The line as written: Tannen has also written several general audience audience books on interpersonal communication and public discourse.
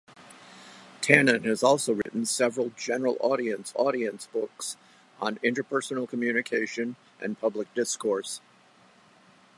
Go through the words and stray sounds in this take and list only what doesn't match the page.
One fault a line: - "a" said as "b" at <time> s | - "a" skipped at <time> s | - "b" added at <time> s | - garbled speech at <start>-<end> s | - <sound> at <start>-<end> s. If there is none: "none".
- dropout at 2.0-2.1 s